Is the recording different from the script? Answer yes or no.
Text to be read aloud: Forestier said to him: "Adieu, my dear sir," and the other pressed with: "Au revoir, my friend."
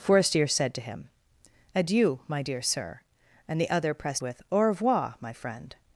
no